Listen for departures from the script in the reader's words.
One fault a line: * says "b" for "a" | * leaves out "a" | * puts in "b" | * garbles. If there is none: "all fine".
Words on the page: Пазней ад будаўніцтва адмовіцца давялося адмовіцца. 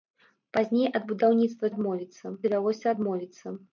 all fine